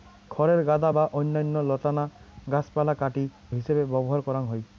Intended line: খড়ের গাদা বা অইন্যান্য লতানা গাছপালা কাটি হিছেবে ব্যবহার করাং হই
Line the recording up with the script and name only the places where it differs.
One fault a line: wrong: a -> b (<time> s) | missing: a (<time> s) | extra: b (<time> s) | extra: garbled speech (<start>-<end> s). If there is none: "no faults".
no faults